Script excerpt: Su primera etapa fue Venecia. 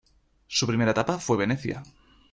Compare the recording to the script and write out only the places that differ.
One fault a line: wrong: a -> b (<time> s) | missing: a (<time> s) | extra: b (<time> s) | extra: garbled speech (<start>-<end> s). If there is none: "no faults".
no faults